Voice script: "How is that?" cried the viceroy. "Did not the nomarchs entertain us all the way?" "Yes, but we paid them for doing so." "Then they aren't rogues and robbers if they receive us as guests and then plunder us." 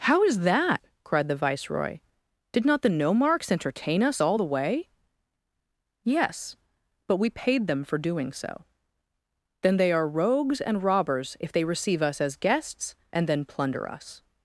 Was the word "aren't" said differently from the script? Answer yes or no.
yes